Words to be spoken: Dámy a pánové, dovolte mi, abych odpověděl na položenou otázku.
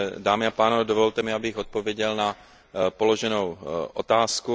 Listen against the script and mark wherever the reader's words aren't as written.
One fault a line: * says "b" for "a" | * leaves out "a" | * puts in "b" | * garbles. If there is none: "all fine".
all fine